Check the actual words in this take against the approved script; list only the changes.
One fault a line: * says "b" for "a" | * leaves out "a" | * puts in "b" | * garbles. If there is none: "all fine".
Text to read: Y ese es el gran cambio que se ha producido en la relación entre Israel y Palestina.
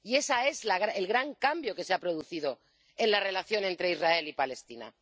all fine